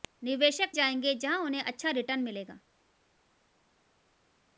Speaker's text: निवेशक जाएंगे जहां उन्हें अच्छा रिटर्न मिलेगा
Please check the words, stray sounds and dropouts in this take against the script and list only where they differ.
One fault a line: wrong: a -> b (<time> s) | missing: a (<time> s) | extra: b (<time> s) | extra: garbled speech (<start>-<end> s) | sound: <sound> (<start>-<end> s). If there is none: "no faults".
no faults